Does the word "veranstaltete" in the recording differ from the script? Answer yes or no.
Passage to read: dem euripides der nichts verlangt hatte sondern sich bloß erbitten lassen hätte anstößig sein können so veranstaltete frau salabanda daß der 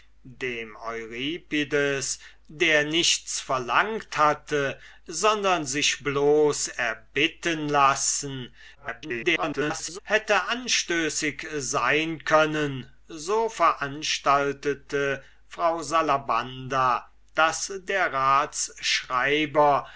no